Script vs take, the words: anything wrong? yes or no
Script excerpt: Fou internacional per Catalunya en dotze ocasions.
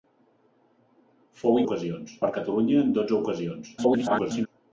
yes